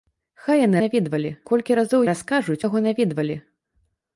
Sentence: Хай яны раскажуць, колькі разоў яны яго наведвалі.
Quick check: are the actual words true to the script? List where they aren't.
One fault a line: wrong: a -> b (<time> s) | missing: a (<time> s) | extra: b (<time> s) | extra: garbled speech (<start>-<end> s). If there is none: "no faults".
wrong: раскажуць -> наведвалі (0.8 s)
wrong: яны -> раскажуць (2.1 s)